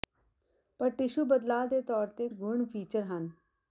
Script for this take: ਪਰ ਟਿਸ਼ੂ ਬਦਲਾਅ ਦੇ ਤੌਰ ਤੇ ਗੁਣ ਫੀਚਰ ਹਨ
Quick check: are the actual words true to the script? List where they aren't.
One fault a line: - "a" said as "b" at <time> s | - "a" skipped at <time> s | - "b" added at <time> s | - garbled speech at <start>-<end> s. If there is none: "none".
none